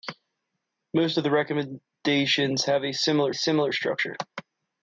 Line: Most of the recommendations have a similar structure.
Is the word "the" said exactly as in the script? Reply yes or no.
yes